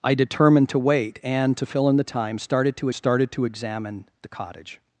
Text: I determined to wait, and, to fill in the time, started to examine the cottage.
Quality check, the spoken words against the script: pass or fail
fail